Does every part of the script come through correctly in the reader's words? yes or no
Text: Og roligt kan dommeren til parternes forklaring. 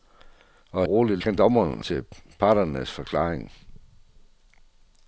yes